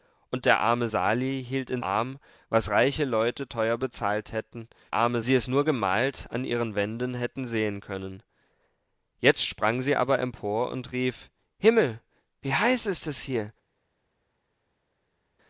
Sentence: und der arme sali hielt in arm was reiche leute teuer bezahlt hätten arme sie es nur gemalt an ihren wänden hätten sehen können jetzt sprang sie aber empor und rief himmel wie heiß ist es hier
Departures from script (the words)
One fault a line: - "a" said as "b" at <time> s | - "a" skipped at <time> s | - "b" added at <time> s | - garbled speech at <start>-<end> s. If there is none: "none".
none